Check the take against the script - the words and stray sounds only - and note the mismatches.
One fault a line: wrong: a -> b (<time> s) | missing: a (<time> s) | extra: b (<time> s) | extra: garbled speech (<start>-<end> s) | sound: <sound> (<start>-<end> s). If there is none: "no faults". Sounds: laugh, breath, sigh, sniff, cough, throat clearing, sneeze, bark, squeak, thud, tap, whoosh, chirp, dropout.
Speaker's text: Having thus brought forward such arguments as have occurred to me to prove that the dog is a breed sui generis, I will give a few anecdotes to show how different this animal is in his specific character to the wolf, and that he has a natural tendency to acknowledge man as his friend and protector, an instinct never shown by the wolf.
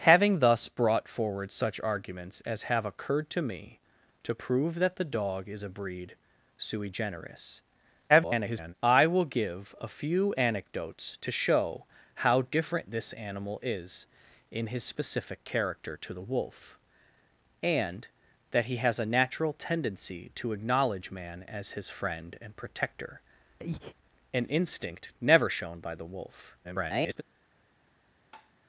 extra: garbled speech (8.1-8.7 s)
sound: breath (23.6-23.9 s)
extra: garbled speech (26.6-27.2 s)
sound: tap (28.3-28.5 s)